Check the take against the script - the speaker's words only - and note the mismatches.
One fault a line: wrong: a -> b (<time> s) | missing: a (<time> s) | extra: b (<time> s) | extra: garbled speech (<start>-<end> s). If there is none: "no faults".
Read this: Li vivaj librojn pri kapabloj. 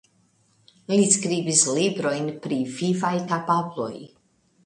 wrong: vivaj -> skribis (1.1 s)
extra: vivaj (2.8 s)